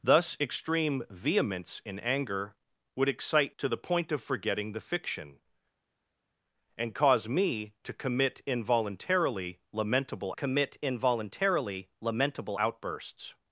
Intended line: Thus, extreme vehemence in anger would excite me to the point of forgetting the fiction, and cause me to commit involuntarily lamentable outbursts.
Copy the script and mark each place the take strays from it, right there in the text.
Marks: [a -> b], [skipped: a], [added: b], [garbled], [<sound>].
Thus, extreme vehemence in anger would excite [skipped: me] to the point of forgetting the fiction, and cause me to commit involuntarily lamentable [added: commit involuntarily lamentable] outbursts.